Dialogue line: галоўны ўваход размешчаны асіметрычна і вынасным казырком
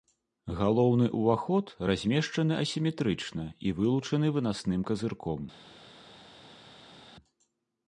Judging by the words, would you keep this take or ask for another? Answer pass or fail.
fail